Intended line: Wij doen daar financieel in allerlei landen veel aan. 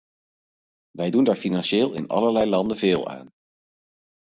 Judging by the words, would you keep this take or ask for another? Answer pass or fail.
pass